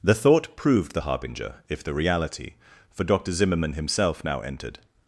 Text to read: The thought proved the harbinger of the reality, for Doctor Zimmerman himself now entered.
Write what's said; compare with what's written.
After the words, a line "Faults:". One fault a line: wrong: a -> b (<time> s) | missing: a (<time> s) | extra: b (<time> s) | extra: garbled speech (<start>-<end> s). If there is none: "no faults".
The thought proved the harbinger if the reality, for Doctor Zimmerman himself now entered.
Faults:
wrong: of -> if (1.7 s)